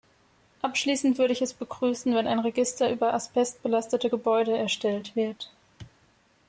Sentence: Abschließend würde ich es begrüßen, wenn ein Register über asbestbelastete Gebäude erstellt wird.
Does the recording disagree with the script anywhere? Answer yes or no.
no